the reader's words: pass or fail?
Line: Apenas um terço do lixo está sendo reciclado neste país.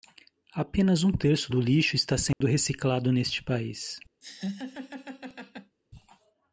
pass